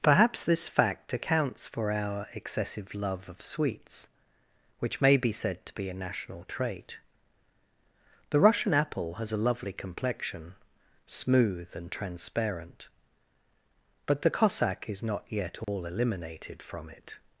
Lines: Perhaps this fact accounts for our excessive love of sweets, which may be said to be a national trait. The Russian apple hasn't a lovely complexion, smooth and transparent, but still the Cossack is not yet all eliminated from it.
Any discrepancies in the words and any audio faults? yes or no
yes